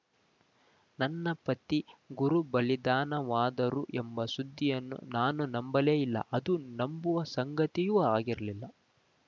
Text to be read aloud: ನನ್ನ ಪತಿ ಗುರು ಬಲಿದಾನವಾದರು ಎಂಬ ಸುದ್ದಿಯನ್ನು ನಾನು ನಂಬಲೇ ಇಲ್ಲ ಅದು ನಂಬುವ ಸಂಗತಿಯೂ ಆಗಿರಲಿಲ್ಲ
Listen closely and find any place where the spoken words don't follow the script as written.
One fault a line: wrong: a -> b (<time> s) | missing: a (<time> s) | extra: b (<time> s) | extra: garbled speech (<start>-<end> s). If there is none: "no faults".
no faults